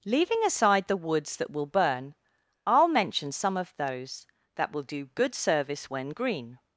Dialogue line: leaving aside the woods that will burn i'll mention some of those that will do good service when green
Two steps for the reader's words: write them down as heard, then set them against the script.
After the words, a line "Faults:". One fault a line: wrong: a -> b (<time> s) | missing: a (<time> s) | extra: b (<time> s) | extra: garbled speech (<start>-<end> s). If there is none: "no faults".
leaving aside the woods that will burn i'll mention some of those that will do good service when green
Faults:
no faults